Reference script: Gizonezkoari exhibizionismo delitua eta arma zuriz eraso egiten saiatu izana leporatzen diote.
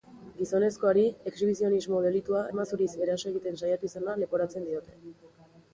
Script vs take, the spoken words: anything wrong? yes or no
yes